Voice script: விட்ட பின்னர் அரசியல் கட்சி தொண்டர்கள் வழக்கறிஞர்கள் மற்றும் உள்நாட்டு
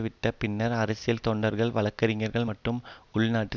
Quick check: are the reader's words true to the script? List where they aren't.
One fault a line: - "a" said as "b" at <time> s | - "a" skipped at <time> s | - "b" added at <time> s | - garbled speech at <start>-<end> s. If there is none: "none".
- "கட்சி" skipped at 1.2 s